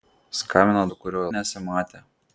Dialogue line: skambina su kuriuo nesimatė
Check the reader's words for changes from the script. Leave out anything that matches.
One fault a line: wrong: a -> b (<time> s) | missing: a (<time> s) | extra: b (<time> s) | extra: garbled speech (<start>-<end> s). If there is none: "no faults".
no faults